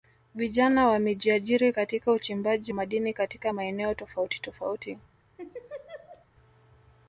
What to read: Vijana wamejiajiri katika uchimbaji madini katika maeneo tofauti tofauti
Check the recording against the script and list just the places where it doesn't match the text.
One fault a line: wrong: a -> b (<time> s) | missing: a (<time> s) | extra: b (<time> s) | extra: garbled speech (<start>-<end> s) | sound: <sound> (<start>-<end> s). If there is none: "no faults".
sound: laugh (5.4-6.3 s)